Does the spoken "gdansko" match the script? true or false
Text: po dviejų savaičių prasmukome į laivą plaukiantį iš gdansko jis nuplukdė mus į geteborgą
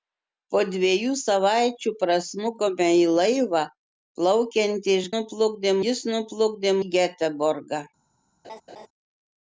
false